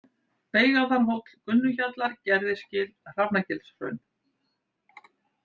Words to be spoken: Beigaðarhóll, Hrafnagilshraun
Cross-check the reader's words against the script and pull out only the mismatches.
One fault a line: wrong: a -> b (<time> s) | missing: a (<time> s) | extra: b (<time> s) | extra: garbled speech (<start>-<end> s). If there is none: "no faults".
extra: Gunnuhjallar Gerðisgil (1.5 s)